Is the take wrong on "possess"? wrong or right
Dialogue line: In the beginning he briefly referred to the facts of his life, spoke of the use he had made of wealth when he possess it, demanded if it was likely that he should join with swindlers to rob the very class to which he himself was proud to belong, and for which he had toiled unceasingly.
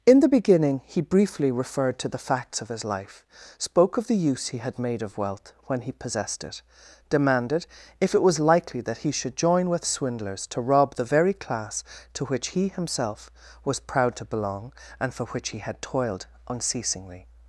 wrong